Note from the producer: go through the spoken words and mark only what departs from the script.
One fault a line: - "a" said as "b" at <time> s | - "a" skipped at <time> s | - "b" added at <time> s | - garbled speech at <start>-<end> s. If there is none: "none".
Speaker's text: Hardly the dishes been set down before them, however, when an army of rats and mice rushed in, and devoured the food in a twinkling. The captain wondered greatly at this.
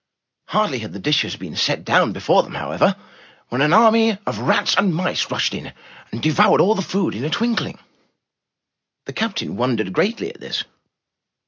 - "had" added at 0.8 s
- "all" added at 6.6 s